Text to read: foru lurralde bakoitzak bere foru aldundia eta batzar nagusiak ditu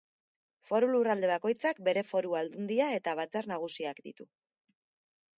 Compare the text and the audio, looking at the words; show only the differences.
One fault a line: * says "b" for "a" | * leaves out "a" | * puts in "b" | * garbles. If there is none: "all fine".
all fine